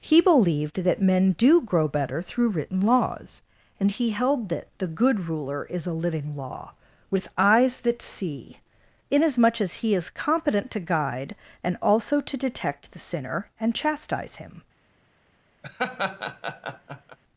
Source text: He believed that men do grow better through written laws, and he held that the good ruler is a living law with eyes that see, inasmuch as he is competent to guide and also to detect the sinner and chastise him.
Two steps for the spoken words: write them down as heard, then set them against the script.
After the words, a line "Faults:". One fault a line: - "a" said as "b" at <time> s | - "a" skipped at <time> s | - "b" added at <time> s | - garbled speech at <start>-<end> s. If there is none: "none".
He believed that men do grow better through written laws, and he held that the good ruler is a living law with eyes that see, inasmuch as he is competent to guide and also to detect the sinner and chastise him.
Faults:
none